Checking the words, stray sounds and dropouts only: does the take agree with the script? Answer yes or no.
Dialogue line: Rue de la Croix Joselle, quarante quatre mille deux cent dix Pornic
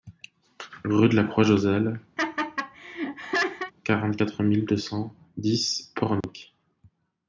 no